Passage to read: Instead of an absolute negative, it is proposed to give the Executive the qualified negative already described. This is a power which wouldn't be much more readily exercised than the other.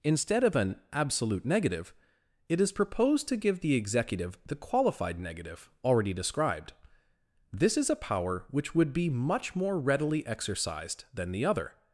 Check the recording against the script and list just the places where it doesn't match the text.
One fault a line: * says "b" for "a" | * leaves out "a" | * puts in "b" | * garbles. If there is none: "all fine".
* says "would" for "wouldn't"